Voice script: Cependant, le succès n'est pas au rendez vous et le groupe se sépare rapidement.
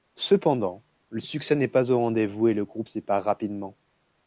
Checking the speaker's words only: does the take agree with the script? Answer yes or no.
no